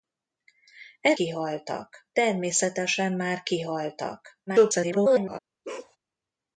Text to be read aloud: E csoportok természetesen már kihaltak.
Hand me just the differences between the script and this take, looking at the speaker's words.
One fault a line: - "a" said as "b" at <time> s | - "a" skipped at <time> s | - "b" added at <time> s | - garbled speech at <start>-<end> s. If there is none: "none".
- "csoportok" said as "kihaltak" at 1.1 s
- garbled speech at 4.5-5.4 s